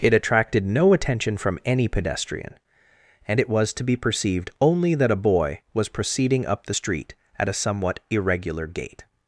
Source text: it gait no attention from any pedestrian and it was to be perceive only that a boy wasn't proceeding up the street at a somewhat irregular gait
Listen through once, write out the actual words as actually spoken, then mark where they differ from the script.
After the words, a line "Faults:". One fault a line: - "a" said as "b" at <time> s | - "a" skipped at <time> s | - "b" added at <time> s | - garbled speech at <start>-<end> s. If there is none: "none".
it attracted no attention from any pedestrian and it was to be perceived only that a boy was proceeding up the street at a somewhat irregular gait
Faults:
- "gait" said as "attracted" at 0.1 s
- "perceive" said as "perceived" at 4.0 s
- "wasn't" said as "was" at 5.7 s